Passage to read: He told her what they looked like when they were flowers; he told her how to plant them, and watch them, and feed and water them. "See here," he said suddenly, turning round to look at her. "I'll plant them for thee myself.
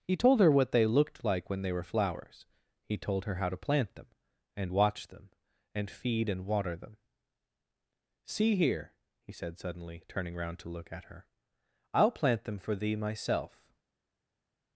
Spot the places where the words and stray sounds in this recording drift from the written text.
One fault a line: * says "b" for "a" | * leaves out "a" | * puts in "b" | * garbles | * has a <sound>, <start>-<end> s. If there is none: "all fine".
all fine